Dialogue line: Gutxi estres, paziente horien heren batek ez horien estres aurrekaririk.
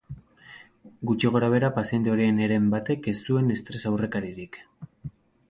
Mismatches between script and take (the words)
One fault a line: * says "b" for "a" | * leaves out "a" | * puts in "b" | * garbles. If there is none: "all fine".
* says "gorabehera" for "estres"
* says "zuen" for "horien"